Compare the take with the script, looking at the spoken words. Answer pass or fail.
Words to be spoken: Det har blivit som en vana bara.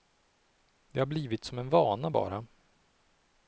pass